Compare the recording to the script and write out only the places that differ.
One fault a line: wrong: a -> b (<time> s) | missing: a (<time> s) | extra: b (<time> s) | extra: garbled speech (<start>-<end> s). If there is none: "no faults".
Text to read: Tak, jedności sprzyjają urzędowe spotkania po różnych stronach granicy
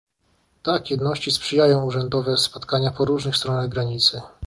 no faults